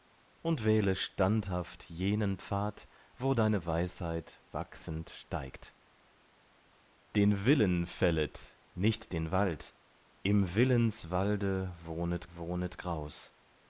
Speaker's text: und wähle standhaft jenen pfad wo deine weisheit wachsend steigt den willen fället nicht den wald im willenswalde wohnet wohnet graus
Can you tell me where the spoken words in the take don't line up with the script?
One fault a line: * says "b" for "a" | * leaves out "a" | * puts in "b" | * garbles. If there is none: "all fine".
all fine